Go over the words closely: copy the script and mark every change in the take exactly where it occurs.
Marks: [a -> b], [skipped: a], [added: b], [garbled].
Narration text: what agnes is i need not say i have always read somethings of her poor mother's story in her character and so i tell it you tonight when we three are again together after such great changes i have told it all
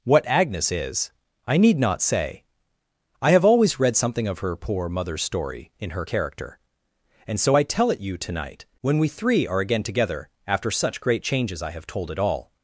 what agnes is i need not say i have always read [somethings -> something] of her poor mother's story in her character and so i tell it you tonight when we three are again together after such great changes i have told it all